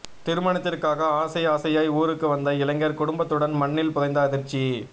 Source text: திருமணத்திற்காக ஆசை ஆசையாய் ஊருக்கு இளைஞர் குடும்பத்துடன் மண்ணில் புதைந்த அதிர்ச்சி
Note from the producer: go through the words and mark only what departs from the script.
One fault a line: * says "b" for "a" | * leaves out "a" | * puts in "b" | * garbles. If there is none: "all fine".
* puts in "வந்த"